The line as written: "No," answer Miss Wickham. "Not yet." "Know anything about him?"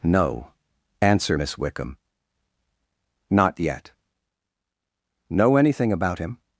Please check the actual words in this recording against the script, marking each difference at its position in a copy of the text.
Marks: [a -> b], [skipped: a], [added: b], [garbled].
"No," answer Miss Wickham. "Not yet." "Know anything about him?"